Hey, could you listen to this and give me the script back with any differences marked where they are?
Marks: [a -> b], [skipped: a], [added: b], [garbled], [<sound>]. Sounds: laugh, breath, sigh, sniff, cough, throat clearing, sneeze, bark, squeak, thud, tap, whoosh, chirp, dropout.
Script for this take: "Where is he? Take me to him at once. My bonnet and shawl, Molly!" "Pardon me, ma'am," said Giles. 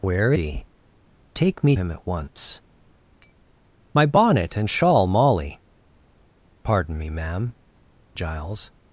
"Where [skipped: is] he? Take me [skipped: to] him at once. [tap] My bonnet and shawl, Molly!" "Pardon me, ma'am," [skipped: said] Giles.